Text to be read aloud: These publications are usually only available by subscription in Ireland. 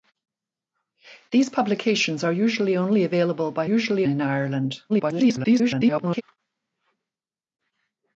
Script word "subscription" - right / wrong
wrong